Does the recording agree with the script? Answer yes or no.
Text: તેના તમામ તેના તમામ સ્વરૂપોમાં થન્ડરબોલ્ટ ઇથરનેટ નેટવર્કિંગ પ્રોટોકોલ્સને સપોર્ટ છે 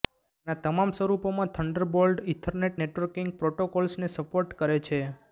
no